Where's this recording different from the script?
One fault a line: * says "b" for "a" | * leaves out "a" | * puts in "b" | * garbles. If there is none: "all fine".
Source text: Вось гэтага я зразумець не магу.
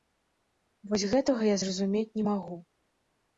all fine